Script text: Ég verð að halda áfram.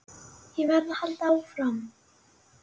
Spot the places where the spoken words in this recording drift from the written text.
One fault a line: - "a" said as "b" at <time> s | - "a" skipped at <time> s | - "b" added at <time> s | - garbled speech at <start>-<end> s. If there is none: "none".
none